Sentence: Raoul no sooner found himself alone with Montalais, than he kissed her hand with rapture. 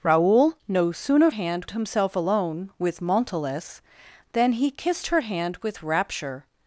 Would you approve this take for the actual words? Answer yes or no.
no